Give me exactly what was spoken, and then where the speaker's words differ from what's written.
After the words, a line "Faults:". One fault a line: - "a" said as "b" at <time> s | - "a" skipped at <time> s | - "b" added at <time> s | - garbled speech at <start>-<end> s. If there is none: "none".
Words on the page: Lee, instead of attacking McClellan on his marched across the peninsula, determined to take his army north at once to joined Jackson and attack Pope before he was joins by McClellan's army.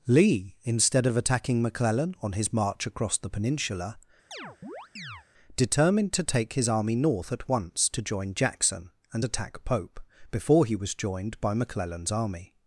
Lee, instead of attacking McClellan on his march across the peninsula, determined to take his army north at once to join Jackson and attack Pope before he was joined by McClellan's army.
Faults:
- "marched" said as "march" at 2.5 s
- "joined" said as "join" at 8.0 s
- "joins" said as "joined" at 10.9 s